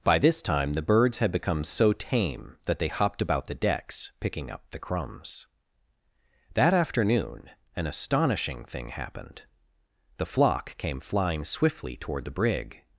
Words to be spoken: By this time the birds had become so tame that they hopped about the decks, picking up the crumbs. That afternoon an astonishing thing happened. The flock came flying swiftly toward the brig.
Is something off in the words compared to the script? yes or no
no